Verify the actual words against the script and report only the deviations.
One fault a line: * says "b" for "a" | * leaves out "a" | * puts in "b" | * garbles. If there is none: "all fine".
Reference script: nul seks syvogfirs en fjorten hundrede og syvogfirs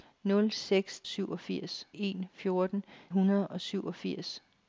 all fine